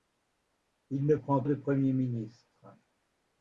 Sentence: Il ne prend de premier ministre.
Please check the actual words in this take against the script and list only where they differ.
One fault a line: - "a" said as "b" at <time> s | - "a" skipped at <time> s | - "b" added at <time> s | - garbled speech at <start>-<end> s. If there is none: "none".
none